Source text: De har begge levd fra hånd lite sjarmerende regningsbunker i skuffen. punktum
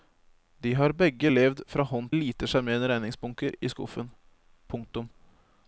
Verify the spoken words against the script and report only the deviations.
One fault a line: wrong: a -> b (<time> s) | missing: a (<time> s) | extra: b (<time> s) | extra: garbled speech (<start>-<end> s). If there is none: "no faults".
no faults